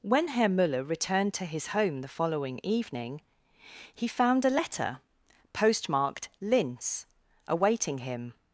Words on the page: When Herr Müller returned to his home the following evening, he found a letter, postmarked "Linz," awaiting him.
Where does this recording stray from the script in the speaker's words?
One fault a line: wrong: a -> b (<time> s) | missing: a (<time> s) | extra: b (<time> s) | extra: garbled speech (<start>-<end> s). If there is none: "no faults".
no faults